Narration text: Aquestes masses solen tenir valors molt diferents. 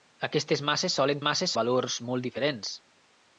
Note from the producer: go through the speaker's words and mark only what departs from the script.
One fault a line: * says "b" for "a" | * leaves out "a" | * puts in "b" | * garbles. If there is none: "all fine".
* says "masses" for "tenir"